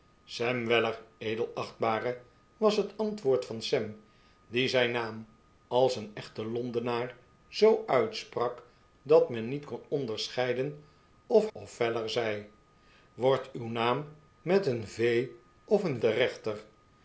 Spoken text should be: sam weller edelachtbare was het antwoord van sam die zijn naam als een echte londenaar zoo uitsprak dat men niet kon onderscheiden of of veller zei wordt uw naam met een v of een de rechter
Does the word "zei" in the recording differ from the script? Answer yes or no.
no